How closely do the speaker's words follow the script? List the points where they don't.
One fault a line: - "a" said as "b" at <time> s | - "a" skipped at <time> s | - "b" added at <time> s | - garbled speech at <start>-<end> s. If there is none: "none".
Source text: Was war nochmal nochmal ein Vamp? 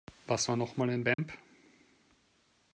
- "nochmal" skipped at 0.9 s